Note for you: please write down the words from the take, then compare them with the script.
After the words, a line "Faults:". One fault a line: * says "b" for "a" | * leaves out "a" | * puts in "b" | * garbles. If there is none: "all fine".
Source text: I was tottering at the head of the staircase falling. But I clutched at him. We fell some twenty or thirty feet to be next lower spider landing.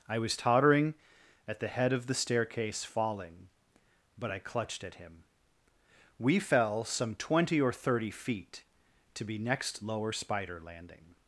I was tottering at the head of the staircase falling. But I clutched at him. We fell some twenty or thirty feet to be next lower spider landing.
Faults:
all fine